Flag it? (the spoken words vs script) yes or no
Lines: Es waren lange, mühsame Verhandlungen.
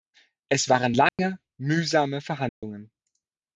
no